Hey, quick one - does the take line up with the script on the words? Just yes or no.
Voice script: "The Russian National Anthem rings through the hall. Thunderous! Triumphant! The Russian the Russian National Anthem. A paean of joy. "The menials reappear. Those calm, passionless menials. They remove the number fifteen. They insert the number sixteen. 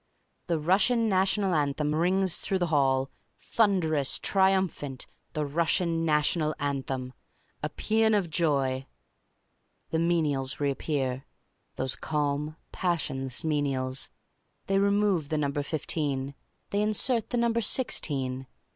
no